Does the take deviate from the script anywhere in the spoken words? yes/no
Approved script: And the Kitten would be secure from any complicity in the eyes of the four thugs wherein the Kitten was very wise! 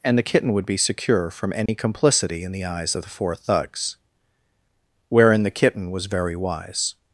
no